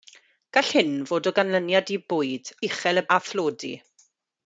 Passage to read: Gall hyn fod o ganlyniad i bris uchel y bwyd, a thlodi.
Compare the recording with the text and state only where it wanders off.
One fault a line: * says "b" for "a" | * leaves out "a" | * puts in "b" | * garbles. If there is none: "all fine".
* says "bwyd" for "bris"
* leaves out "bwyd"